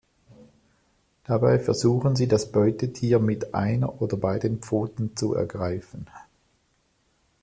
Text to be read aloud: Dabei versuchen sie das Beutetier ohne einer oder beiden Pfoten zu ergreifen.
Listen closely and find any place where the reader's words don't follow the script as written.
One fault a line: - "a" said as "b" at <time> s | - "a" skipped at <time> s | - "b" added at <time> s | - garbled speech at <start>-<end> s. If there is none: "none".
- "ohne" said as "mit" at 3.2 s